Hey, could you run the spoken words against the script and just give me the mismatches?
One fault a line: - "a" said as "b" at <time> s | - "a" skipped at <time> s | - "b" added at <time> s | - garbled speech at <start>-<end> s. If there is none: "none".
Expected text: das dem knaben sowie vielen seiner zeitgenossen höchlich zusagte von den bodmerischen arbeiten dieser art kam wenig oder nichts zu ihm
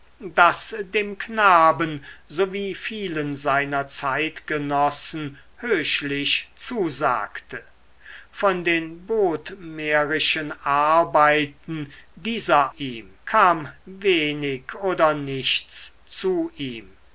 - "art" said as "ihm" at 12.8 s